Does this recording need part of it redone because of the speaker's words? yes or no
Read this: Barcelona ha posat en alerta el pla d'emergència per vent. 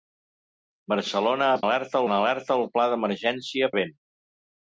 yes